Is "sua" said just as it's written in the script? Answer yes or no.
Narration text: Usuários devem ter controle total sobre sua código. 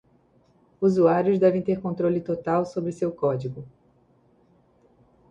no